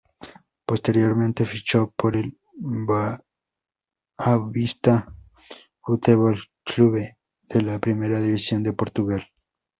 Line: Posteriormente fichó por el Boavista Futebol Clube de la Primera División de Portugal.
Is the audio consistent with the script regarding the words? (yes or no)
yes